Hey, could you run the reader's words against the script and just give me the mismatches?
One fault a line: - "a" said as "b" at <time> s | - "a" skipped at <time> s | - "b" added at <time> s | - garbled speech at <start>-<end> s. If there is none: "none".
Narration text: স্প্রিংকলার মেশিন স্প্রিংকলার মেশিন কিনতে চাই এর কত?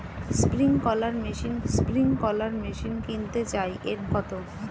none